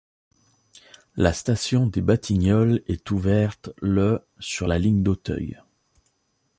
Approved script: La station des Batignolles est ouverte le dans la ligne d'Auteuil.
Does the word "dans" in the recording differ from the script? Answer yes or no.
yes